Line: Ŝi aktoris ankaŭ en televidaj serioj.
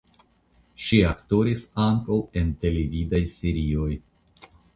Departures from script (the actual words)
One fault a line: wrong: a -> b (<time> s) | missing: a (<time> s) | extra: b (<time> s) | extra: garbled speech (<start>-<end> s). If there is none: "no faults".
no faults